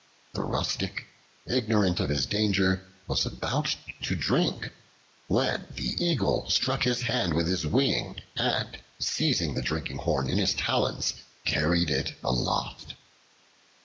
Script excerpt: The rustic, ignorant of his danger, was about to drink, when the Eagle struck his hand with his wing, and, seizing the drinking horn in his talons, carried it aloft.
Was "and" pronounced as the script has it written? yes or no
yes